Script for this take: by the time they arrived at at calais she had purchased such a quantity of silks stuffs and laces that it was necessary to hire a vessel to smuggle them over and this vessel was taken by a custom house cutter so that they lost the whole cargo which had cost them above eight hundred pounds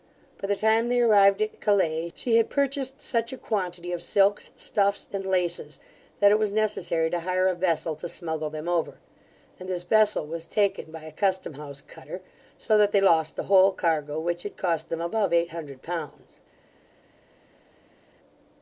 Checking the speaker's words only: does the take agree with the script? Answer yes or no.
yes